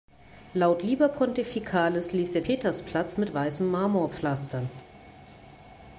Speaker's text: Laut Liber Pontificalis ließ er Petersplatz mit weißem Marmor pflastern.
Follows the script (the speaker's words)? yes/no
yes